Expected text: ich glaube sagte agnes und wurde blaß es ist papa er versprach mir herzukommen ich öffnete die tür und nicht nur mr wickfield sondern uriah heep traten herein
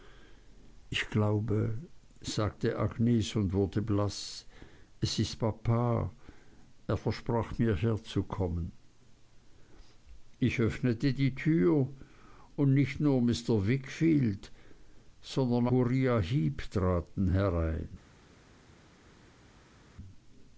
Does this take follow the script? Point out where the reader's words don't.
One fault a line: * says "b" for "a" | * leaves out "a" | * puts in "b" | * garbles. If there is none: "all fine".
all fine